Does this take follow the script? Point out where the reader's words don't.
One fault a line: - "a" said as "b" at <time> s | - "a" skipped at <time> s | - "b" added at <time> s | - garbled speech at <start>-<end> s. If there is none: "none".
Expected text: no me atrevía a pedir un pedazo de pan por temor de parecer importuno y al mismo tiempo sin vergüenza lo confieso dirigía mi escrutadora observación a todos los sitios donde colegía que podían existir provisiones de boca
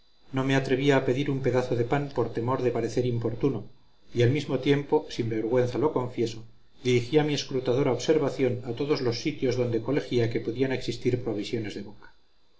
none